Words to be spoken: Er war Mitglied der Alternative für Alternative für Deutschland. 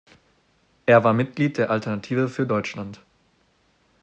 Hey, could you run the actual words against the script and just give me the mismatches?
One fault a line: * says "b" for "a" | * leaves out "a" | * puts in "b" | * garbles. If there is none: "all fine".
* leaves out "Alternative für"